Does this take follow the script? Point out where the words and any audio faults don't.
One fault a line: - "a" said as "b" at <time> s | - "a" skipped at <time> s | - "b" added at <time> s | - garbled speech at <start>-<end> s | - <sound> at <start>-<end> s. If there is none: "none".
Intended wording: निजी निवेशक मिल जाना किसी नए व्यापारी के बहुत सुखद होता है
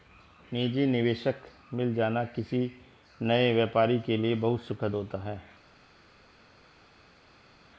- "लिए" added at 4.2 s